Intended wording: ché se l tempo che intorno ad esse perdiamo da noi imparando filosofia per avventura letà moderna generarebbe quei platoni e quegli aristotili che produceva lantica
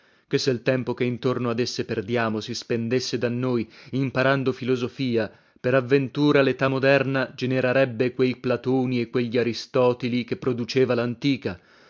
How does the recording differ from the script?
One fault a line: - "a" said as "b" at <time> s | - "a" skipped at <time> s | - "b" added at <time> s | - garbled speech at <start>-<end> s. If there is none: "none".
- "si spendesse" added at 2.4 s